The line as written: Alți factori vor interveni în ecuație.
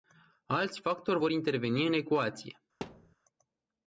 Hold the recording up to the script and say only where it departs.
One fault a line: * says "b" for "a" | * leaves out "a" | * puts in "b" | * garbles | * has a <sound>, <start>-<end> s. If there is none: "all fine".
* has a thud, 2.8-3.2 s